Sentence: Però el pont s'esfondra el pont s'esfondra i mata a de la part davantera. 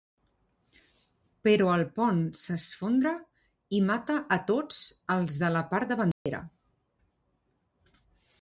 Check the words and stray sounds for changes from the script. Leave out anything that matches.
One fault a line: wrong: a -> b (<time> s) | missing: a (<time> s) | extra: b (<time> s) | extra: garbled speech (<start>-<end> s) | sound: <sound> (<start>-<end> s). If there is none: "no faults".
missing: el pont s'esfondra (3.1 s)
extra: tots els (4.5 s)
sound: dropout (6.1-6.3 s)